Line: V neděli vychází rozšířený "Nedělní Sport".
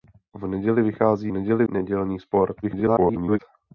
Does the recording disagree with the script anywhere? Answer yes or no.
yes